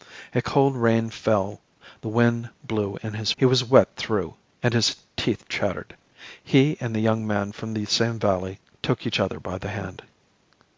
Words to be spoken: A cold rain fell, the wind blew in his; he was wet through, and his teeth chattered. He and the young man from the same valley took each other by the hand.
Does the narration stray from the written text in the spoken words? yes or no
no